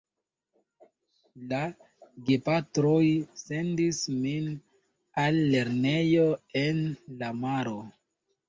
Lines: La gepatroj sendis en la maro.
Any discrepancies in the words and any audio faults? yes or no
yes